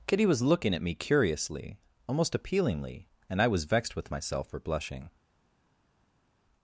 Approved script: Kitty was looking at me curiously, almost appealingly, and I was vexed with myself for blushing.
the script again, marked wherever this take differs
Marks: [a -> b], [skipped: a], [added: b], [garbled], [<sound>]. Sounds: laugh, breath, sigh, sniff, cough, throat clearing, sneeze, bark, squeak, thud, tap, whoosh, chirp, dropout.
Kitty was looking at me curiously, almost appealingly, and I was vexed with myself for blushing.